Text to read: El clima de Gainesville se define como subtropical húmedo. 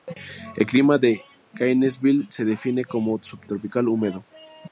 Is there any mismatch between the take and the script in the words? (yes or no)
no